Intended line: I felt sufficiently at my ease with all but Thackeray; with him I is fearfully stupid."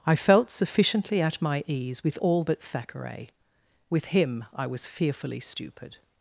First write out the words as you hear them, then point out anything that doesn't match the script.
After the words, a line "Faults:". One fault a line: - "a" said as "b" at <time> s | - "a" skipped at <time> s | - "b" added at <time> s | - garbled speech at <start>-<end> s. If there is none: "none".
I felt sufficiently at my ease with all but Thackeray; with him I was fearfully stupid."
Faults:
- "is" said as "was" at 4.7 s